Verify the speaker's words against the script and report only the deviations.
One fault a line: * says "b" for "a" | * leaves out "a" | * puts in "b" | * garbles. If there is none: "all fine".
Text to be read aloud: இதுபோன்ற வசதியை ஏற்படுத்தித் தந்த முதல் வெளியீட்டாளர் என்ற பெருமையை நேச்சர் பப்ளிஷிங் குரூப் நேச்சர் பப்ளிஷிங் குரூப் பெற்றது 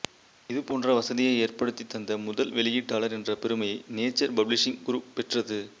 * leaves out "நேச்சர் பப்ளிஷிங் குரூப்"